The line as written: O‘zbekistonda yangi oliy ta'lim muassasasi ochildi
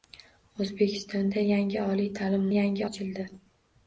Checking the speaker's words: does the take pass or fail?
fail